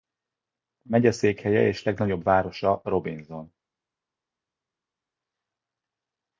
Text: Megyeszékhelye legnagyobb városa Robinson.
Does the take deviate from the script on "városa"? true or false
false